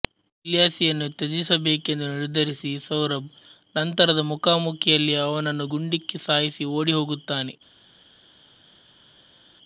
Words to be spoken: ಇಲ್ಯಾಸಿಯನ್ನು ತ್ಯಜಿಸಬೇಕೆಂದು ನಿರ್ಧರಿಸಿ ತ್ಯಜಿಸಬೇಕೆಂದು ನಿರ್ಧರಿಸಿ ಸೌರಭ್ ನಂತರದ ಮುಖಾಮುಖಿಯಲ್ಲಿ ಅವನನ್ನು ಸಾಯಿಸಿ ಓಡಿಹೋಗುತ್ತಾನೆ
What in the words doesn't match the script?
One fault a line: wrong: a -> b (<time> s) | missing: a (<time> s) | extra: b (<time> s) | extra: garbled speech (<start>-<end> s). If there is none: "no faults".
missing: ತ್ಯಜಿಸಬೇಕೆಂದು ನಿರ್ಧರಿಸಿ (2.7 s)
extra: ಗುಂಡಿಕ್ಕಿ (5.7 s)